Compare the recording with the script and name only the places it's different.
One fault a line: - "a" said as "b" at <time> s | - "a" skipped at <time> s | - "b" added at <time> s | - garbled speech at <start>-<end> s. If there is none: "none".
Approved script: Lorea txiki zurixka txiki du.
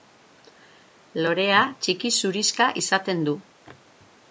- "txiki" said as "izaten" at 2.9 s